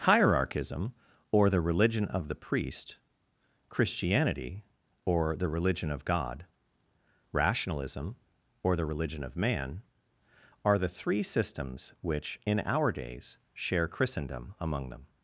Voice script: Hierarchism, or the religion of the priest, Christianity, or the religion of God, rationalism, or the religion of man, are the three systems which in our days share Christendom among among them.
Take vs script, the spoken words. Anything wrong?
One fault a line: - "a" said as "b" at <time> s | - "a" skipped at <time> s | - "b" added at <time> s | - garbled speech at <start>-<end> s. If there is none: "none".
- "among" skipped at 14.9 s